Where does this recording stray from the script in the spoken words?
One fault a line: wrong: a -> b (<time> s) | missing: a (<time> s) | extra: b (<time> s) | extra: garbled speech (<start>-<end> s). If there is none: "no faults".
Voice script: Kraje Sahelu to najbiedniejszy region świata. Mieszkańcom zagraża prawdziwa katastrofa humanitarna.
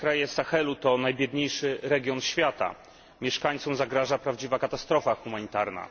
no faults